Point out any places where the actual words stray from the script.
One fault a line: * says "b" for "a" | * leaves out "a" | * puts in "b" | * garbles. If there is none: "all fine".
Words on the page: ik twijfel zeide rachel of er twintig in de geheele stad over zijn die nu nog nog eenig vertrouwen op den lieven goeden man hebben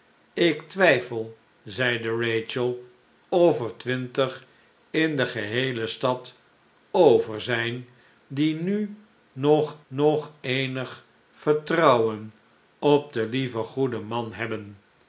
all fine